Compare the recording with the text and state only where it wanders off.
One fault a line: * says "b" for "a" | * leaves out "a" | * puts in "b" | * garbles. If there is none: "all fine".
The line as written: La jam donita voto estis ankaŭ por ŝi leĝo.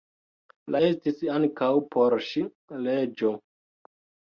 * leaves out "jam donita voto"